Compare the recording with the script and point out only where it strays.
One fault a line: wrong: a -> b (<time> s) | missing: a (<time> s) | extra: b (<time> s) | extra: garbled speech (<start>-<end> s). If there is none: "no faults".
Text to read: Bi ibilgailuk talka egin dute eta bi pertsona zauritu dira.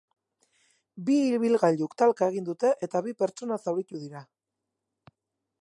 no faults